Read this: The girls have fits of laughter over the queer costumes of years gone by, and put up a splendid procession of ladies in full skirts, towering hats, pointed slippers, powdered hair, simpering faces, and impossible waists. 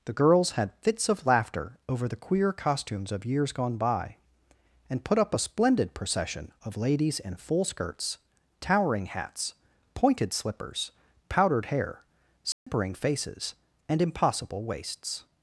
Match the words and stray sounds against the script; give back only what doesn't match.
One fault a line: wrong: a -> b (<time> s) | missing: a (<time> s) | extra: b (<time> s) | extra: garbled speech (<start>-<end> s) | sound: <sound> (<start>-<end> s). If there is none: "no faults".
wrong: have -> had (0.5 s)
sound: dropout (12.5-12.7 s)